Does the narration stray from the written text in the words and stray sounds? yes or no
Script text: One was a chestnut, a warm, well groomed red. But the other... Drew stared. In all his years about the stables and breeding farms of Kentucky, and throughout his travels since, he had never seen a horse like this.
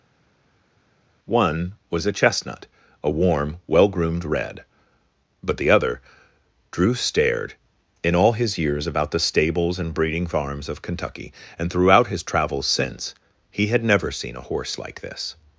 no